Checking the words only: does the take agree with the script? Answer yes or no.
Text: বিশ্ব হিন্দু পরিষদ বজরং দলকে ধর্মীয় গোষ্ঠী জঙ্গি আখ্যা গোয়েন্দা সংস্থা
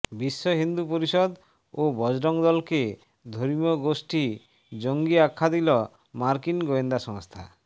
no